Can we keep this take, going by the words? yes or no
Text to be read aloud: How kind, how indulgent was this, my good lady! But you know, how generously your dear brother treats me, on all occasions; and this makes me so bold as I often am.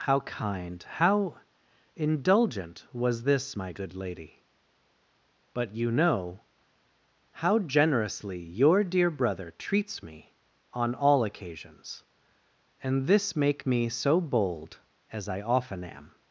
no